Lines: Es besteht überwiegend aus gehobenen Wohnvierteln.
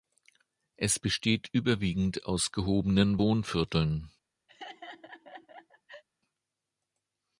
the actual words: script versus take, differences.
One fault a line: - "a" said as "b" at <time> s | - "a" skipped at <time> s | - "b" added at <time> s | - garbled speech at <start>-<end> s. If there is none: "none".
none